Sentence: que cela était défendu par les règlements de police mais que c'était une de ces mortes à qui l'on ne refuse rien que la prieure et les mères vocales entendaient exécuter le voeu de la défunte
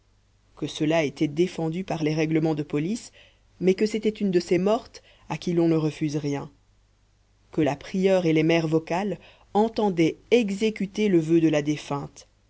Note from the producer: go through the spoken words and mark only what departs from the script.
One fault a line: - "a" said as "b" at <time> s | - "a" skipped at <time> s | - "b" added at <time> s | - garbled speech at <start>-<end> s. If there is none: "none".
none